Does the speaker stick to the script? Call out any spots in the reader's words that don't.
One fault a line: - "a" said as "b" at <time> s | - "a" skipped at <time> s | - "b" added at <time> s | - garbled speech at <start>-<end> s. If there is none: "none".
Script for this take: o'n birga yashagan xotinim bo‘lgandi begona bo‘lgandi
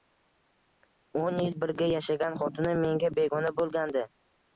- "yil" added at 1.4 s
- "bo‘lgandi" said as "menga" at 2.8 s